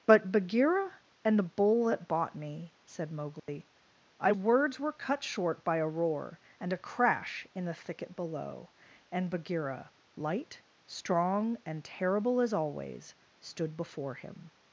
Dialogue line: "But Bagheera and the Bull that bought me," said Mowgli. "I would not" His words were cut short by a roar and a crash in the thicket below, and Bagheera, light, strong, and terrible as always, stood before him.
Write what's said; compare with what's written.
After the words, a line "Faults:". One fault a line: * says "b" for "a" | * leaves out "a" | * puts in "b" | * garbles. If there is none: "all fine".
"But Bagheera and the Bull that bought me," said Mowgli. "I words were cut short by a roar and a crash in the thicket below, and Bagheera, light, strong, and terrible as always, stood before him.
Faults:
* leaves out "would not His"